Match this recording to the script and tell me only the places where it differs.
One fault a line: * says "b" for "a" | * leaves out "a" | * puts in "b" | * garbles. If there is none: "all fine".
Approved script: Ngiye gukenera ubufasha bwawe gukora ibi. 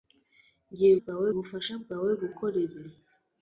* says "bwawe" for "gukenera"